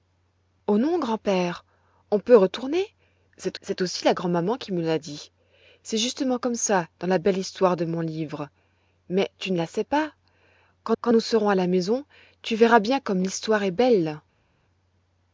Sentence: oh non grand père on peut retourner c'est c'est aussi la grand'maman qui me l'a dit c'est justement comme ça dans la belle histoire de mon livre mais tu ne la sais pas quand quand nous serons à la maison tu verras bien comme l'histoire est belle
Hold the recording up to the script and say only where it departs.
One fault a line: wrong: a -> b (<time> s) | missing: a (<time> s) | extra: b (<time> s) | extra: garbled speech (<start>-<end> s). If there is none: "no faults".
no faults